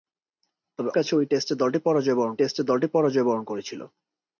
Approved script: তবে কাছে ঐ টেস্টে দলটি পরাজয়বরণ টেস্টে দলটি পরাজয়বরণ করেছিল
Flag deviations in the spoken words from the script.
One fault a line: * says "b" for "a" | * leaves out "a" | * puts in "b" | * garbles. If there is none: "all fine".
all fine